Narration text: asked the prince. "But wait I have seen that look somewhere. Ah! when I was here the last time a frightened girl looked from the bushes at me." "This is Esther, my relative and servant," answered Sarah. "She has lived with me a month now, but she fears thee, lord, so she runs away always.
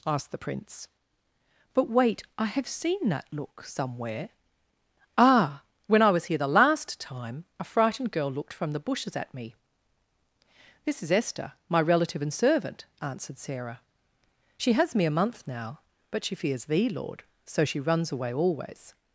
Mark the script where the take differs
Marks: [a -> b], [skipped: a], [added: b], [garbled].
asked the prince. "But wait I have seen that look somewhere. Ah! when I was here the last time a frightened girl looked from the bushes at me." "This is Esther, my relative and servant," answered Sarah. "She has [skipped: lived with] me a month now, but she fears thee, lord, so she runs away always.